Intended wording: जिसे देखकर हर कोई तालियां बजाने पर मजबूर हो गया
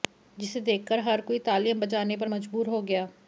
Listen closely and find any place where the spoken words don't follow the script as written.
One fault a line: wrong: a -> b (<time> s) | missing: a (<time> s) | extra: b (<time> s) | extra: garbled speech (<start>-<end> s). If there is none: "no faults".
no faults